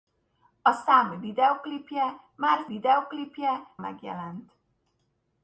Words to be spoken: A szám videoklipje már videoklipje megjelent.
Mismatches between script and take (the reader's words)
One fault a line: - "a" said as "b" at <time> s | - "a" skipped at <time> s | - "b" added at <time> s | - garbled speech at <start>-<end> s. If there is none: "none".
none